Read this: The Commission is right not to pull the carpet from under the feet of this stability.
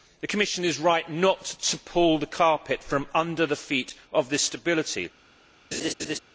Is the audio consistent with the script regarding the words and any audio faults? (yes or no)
no